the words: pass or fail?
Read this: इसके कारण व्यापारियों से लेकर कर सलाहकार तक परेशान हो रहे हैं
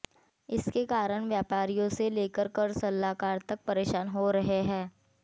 pass